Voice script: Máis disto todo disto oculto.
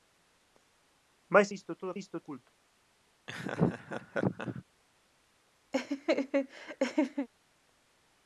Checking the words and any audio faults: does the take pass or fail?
fail